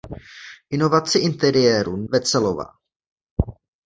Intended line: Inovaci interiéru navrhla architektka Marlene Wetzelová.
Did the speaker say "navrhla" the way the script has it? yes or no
no